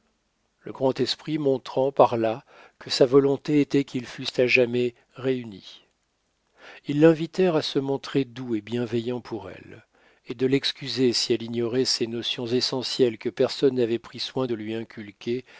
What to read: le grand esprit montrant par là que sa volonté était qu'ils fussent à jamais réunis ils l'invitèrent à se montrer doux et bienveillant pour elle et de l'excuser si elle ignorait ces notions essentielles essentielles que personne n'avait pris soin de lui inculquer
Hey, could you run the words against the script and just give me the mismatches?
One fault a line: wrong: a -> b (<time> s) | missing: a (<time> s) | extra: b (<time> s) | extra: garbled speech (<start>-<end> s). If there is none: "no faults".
missing: essentielles (13.2 s)